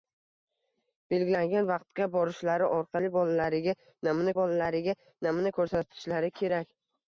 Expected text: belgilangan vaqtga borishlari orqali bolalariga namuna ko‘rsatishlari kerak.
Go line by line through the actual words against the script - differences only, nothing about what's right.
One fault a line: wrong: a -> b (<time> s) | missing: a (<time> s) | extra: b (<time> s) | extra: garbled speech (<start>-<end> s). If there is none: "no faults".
extra: bolalariga namuna (4.4 s)